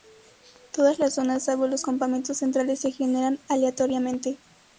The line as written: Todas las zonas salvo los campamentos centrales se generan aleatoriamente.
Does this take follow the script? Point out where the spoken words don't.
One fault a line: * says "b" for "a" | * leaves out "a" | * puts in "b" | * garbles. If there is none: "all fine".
all fine